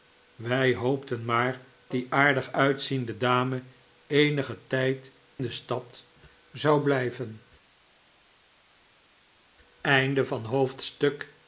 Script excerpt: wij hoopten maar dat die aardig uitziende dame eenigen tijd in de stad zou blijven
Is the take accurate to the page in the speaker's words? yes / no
no